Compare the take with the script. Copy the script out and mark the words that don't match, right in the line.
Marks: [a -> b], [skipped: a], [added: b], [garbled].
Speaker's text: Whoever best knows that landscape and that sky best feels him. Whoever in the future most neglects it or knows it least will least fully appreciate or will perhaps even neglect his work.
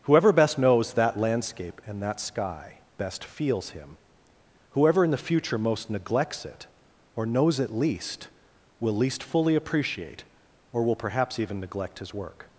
Whoever best knows that landscape and that sky best feels him. Whoever in the future most neglects it or knows it least will least fully appreciate or will perhaps even neglect his work.